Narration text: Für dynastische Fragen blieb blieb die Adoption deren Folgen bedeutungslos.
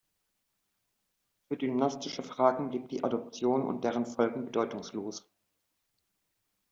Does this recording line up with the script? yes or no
no